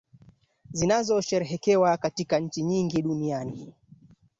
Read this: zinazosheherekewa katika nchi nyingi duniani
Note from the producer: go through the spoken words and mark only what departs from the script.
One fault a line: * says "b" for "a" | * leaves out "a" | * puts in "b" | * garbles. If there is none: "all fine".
all fine